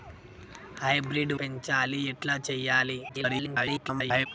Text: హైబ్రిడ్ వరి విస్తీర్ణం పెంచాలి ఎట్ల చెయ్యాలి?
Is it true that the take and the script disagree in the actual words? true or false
true